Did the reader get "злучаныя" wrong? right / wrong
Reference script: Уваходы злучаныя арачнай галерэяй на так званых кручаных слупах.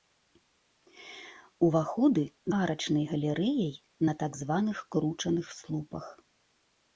wrong